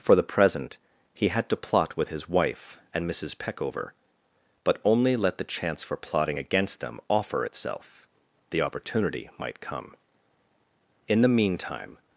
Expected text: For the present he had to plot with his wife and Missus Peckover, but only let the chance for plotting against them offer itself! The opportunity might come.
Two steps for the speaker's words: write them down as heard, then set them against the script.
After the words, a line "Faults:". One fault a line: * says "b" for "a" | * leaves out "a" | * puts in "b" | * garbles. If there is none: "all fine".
For the present he had to plot with his wife and Missus Peckover, but only let the chance for plotting against them offer itself! The opportunity might come. In the meantime
Faults:
* puts in "In the meantime"